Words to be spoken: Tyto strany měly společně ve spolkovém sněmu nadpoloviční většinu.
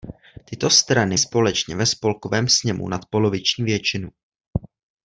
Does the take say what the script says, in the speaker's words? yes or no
no